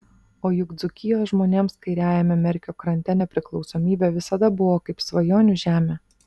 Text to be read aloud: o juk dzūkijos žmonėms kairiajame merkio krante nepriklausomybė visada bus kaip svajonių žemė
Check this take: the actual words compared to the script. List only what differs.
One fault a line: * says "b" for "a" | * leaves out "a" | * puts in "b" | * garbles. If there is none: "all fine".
* says "buvo" for "bus"